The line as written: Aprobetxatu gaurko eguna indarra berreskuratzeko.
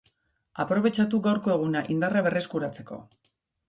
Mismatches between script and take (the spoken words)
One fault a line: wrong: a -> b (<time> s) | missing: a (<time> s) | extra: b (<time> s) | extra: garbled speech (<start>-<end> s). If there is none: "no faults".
no faults